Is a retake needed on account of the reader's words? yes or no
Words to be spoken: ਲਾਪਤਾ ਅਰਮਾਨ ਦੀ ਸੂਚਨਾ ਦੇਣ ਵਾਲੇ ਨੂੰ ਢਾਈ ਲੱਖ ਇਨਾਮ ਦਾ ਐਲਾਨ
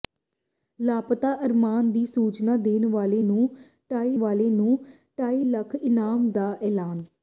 yes